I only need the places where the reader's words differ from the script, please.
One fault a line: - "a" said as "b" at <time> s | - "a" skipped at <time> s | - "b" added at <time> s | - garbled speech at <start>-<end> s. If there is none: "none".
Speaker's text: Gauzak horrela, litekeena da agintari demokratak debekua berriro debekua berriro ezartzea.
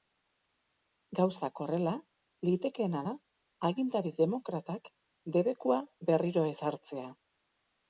- "debekua berriro" skipped at 6.5 s